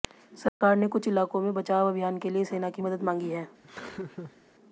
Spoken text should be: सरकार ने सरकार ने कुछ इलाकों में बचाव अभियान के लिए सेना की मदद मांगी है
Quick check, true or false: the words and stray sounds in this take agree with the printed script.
false